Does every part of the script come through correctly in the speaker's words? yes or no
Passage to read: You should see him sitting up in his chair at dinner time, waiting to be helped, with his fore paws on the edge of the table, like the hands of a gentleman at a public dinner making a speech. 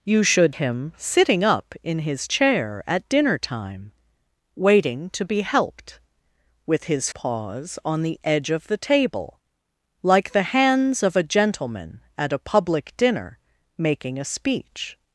no